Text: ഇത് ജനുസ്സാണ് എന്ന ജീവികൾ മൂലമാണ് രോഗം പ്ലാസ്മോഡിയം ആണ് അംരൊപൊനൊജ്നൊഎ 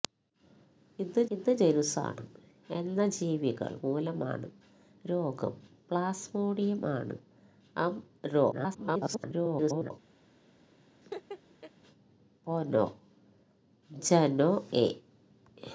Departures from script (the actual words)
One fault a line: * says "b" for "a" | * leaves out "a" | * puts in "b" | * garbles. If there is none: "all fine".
* puts in "ഇത്"
* garbles